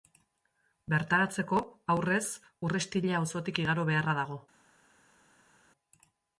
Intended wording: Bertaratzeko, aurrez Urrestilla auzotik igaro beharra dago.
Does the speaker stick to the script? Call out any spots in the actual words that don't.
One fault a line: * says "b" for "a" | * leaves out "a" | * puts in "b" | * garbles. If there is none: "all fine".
all fine